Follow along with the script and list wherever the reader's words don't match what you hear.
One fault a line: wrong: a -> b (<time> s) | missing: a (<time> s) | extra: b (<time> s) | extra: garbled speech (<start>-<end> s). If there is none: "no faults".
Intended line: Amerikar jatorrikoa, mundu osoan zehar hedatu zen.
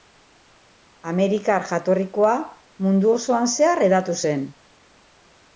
no faults